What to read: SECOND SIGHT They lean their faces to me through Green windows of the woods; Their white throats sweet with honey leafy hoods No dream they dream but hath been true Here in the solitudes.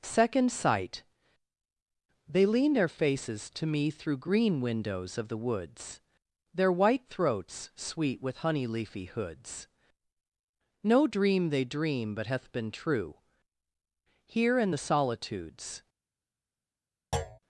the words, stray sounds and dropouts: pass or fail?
fail